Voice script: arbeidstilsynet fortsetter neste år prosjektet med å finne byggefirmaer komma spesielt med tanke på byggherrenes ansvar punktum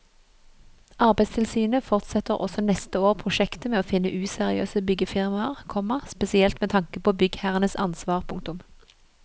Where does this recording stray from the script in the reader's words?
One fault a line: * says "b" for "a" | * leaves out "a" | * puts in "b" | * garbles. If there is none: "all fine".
* puts in "også"
* puts in "useriøse"